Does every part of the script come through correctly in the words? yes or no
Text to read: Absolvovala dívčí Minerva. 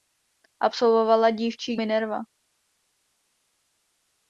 yes